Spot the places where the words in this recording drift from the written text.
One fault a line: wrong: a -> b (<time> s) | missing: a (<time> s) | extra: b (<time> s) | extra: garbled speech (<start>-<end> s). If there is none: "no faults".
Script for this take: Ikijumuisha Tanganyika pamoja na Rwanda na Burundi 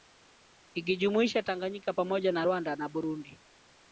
no faults